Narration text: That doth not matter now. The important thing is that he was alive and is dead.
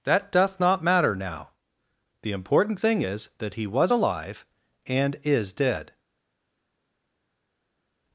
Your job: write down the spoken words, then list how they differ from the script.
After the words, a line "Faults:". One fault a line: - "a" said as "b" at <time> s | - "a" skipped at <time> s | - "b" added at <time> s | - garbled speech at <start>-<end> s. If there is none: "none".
That doth not matter now. The important thing is that he was alive and is dead.
Faults:
none